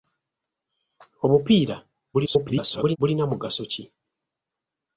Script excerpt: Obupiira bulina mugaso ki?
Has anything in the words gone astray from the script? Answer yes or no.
yes